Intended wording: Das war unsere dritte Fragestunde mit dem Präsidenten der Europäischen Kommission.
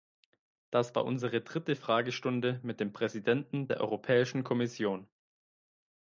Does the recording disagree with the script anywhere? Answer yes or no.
no